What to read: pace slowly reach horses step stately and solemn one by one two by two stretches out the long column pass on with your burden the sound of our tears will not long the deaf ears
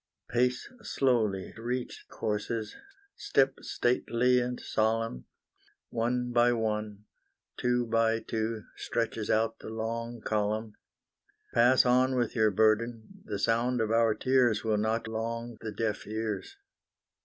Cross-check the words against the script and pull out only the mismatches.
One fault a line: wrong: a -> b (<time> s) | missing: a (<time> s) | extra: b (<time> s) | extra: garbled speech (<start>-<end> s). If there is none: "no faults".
no faults